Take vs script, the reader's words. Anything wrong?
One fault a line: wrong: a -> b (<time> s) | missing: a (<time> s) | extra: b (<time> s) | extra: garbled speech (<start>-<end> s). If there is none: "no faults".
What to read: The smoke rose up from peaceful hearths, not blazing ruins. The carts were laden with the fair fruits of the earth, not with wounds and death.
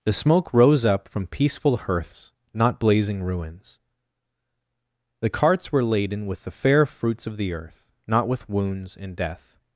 no faults